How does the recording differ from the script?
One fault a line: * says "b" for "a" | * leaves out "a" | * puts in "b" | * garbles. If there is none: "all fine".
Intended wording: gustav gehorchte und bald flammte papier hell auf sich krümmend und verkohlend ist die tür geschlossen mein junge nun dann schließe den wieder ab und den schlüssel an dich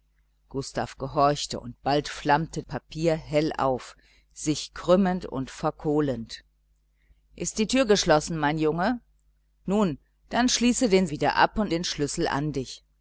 all fine